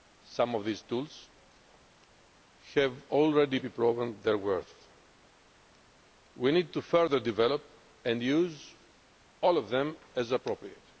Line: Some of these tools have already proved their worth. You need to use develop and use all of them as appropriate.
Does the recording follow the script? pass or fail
fail